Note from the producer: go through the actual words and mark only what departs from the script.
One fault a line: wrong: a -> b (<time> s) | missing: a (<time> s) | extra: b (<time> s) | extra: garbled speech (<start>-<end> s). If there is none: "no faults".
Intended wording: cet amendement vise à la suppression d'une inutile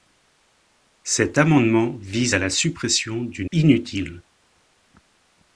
no faults